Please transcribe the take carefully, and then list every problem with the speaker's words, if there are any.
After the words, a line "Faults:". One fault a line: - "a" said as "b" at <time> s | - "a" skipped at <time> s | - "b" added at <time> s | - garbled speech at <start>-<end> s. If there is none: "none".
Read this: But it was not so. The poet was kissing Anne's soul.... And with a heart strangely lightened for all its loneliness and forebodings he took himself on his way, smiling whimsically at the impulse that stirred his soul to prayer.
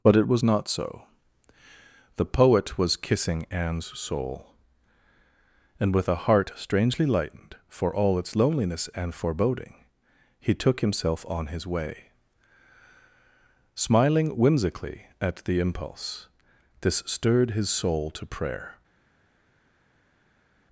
But it was not so. The poet was kissing Anne's soul.... And with a heart strangely lightened for all its loneliness and foreboding he took himself on his way, smiling whimsically at the impulse this stirred his soul to prayer.
Faults:
- "forebodings" said as "foreboding" at 9.1 s
- "that" said as "this" at 16.8 s